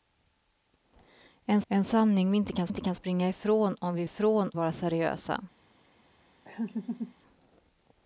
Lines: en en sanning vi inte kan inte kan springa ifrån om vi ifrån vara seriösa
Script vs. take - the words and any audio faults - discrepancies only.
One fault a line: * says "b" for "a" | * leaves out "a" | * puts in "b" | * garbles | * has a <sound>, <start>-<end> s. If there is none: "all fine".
* has a laugh, 6.4-7.1 s